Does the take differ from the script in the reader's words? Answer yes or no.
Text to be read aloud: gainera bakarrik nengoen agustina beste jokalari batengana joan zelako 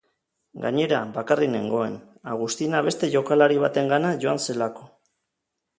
no